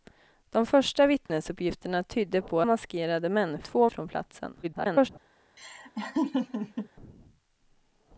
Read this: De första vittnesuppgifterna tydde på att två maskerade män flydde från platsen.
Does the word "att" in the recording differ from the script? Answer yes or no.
yes